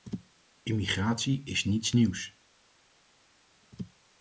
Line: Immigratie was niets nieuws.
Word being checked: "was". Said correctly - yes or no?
no